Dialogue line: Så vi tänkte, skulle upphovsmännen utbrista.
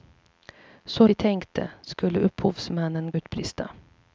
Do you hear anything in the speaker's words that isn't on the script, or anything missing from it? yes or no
no